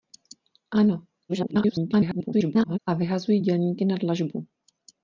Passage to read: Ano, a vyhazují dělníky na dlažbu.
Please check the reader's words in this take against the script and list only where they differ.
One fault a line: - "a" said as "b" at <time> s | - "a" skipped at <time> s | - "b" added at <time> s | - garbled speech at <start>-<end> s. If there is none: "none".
- garbled speech at 1.3-2.8 s